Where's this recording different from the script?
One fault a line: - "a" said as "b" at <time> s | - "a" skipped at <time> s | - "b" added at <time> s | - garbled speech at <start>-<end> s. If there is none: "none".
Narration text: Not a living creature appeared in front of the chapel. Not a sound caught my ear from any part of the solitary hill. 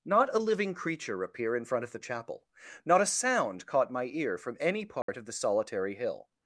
- "appeared" said as "appear" at 1.2 s